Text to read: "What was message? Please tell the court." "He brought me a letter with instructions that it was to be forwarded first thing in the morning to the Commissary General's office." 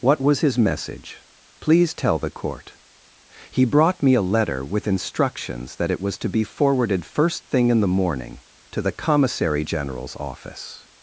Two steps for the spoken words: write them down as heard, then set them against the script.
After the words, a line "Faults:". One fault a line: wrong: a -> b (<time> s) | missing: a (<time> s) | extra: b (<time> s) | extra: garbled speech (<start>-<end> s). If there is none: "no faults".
"What was his message? Please tell the court." "He brought me a letter with instructions that it was to be forwarded first thing in the morning to the Commissary General's office."
Faults:
extra: his (0.4 s)